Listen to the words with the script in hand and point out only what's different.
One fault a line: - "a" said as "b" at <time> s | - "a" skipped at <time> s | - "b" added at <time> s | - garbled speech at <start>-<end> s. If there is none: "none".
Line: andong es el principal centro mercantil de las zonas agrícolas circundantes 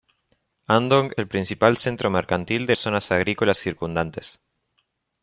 - "es" skipped at 1.1 s
- "las" skipped at 2.7 s